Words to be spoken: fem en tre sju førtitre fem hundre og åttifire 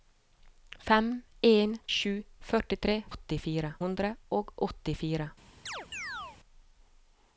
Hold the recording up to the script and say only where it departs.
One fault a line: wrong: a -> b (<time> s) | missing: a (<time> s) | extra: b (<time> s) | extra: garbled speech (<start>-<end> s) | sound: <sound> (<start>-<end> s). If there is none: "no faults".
missing: tre (1.8 s)
wrong: fem -> åttifire (3.1 s)
sound: chirp (5.7-6.4 s)